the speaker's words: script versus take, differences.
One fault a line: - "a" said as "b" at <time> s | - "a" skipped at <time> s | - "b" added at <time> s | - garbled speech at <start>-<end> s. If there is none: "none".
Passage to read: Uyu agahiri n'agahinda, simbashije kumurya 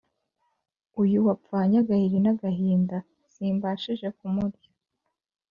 - "wapfanye" added at 1.3 s